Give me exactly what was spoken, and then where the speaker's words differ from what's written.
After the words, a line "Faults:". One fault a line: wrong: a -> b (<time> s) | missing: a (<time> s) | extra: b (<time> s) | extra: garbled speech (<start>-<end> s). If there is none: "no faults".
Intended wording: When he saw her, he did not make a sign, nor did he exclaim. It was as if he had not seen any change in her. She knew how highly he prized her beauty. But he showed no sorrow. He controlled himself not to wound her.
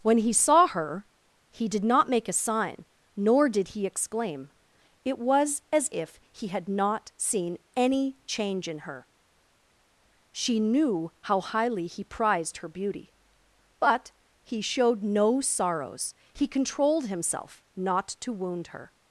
When he saw her, he did not make a sign, nor did he exclaim. It was as if he had not seen any change in her. She knew how highly he prized her beauty. But he showed no sorrows. He controlled himself not to wound her.
Faults:
wrong: sorrow -> sorrows (15.4 s)